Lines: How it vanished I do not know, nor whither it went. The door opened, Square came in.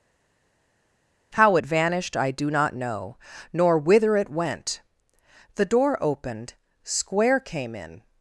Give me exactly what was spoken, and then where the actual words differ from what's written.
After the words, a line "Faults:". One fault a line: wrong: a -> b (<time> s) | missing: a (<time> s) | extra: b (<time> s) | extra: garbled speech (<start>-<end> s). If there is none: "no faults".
How it vanished I do not know, nor whither it went. The door opened, Square came in.
Faults:
no faults